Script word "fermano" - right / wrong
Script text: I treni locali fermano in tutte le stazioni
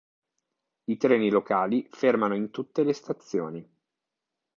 right